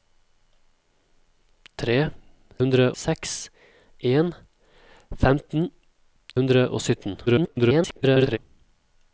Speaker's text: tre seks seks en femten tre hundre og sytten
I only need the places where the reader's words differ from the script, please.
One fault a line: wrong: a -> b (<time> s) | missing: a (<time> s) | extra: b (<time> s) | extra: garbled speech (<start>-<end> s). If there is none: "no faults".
wrong: seks -> hundre (2.6 s)
missing: tre (5.7 s)
extra: garbled speech (7.3-8.4 s)